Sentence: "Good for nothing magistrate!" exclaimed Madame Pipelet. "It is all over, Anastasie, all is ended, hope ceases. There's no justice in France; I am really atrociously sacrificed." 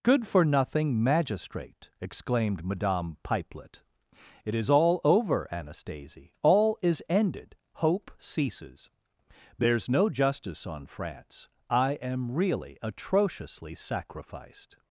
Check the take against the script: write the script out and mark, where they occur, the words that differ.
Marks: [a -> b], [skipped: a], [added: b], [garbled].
"Good for nothing magistrate!" exclaimed Madame Pipelet. "It is all over, Anastasie, all is ended, hope ceases. There's no justice [in -> on] France; I am really atrociously sacrificed."